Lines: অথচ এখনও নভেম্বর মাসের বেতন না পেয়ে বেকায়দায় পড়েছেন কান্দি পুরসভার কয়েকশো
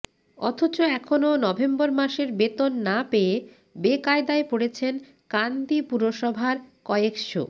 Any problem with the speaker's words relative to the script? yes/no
no